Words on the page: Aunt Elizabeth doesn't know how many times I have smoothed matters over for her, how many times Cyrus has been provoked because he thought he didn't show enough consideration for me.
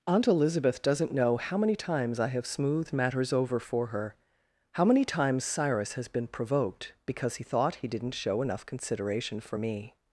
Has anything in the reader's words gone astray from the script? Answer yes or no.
no